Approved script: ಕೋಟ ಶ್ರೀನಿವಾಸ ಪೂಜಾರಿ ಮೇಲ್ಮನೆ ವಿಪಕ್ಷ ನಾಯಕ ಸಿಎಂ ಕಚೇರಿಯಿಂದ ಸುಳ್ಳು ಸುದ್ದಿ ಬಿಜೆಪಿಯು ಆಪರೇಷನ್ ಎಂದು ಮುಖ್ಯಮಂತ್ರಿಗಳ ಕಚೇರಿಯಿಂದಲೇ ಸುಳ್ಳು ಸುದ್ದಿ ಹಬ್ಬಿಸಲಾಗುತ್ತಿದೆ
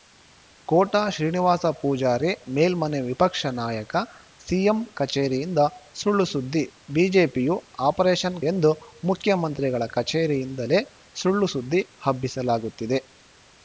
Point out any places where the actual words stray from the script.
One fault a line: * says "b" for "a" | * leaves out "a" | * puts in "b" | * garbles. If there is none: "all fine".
all fine